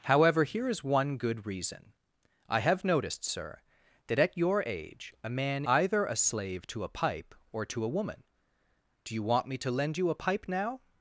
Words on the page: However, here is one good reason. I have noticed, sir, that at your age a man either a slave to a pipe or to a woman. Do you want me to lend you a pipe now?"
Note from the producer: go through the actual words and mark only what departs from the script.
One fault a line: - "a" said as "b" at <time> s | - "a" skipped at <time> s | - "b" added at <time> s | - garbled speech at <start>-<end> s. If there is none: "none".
none